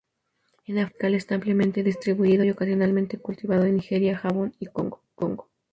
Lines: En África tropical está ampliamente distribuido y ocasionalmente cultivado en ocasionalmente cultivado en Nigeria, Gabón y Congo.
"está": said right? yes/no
yes